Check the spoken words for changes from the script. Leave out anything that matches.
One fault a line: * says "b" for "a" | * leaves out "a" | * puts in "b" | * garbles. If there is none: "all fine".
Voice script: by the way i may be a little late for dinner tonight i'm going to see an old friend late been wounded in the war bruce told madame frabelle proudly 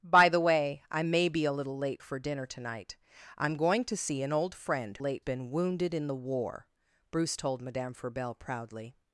all fine